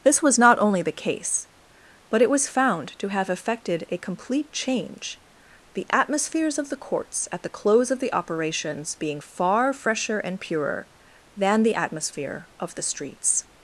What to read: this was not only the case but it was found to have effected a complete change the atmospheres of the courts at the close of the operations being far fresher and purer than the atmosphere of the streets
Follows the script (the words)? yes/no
yes